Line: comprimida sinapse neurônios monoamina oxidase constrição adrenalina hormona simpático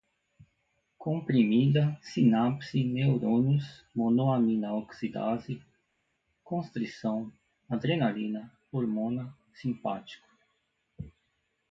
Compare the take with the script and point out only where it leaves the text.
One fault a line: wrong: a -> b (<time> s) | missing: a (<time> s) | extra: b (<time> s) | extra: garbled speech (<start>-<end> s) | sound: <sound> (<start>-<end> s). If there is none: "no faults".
no faults